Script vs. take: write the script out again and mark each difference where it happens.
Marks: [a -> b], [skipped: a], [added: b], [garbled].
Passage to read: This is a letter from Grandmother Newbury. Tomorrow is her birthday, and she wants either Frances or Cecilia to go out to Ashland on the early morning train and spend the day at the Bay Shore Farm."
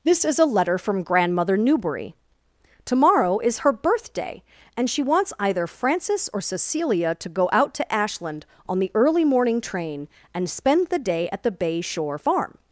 This is a letter from Grandmother Newbury. Tomorrow is her birthday, and she wants either Frances or Cecilia to go out to Ashland on the early morning train and spend the day at the Bay Shore Farm."